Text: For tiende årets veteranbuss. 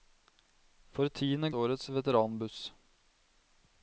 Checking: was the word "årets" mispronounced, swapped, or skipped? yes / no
no